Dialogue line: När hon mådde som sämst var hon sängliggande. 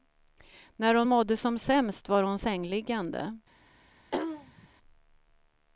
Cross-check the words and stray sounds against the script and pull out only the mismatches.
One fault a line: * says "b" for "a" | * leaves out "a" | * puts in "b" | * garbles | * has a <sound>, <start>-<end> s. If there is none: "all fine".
* has a throat clearing, 4.1-4.7 s